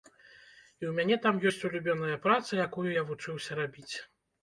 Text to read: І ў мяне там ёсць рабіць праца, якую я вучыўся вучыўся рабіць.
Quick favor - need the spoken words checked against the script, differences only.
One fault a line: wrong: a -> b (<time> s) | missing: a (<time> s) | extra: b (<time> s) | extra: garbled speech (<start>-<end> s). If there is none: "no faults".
wrong: рабіць -> улюбёная (1.7 s)
missing: вучыўся (3.5 s)